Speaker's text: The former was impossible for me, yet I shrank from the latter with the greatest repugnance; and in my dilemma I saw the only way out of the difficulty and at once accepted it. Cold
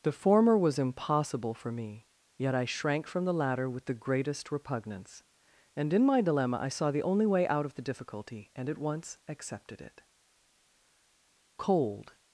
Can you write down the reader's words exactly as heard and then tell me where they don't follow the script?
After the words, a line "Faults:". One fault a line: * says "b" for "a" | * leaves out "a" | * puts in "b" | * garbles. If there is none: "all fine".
The former was impossible for me, yet I shrank from the latter with the greatest repugnance; and in my dilemma I saw the only way out of the difficulty and at once accepted it. Cold
Faults:
all fine